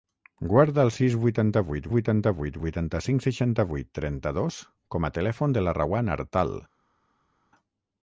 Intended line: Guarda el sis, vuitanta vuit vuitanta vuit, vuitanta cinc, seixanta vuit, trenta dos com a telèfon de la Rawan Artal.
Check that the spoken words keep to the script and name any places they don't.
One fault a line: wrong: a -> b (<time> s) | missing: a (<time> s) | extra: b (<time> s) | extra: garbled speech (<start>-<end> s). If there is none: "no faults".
no faults